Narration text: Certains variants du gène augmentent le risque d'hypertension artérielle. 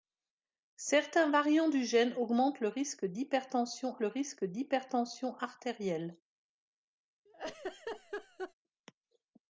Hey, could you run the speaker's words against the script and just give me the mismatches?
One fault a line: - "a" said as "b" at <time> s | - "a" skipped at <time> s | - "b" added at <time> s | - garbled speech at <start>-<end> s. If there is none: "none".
- "le risque d'hypertension" added at 4.0 s